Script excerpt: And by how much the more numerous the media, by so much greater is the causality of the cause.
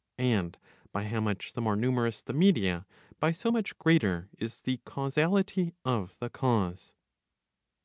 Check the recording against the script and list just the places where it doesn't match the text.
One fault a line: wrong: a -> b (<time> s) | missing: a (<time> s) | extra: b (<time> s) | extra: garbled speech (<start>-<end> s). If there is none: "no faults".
no faults